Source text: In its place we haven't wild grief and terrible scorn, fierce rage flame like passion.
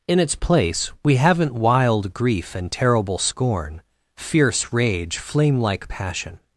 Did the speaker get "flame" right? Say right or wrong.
right